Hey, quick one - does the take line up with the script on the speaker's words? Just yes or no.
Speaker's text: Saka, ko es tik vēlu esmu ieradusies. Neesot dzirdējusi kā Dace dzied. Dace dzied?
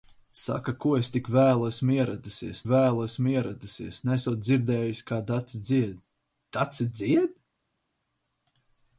no